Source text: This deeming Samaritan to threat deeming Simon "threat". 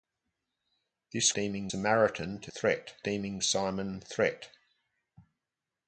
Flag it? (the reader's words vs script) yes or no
no